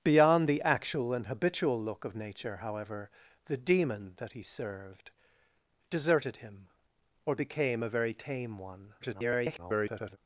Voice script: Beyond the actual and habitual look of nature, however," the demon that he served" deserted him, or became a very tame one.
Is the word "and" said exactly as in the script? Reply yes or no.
yes